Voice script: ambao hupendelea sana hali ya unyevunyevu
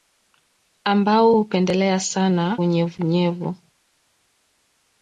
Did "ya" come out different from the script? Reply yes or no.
yes